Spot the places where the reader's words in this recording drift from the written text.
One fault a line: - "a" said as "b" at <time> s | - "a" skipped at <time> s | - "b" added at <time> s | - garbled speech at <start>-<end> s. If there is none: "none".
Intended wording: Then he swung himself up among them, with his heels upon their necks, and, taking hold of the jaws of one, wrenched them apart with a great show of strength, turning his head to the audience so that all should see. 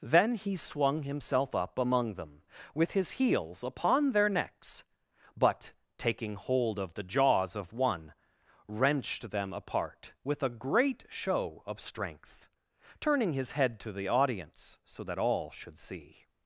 - "and" said as "but" at 5.4 s